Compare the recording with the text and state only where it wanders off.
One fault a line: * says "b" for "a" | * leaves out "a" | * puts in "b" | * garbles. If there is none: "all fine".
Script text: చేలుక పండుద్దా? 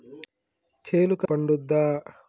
all fine